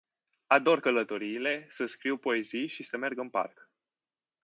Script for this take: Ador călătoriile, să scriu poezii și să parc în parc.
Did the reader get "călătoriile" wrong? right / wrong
right